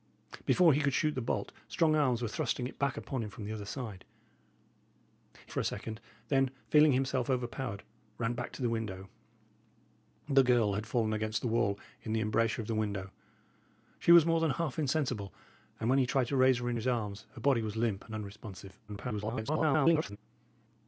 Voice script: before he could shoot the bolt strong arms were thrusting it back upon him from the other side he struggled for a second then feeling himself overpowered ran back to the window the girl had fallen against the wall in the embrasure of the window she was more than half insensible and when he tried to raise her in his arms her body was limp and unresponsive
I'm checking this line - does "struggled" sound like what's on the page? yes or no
no